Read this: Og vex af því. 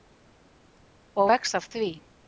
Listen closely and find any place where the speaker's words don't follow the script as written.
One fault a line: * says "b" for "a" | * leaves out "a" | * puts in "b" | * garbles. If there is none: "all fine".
all fine